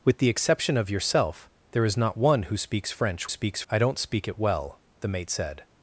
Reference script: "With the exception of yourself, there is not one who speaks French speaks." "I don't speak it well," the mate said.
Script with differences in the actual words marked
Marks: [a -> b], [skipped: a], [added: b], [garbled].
"With the exception of yourself, there is not one who speaks French speaks." "I don't speak it well," the mate said.